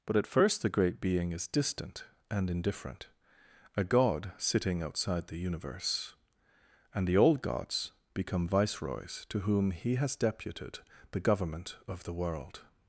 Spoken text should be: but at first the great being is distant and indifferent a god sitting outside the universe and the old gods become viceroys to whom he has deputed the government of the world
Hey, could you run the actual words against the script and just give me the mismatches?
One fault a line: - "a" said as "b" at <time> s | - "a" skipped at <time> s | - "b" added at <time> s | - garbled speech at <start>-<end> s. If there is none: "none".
none